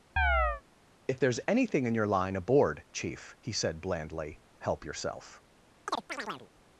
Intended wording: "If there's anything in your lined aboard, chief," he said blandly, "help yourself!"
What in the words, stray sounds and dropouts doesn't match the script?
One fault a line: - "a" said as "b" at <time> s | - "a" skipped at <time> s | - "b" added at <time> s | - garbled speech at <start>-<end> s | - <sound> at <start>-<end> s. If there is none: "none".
- chirp at 0.2-0.6 s
- "lined" said as "line" at 2.1 s
- chirp at 5.9-6.5 s